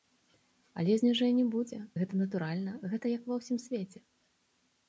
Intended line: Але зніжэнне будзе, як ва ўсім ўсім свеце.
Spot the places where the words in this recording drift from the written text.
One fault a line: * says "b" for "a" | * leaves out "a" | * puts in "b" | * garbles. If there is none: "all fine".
* puts in "гэта натуральна гэта"
* leaves out "ўсім"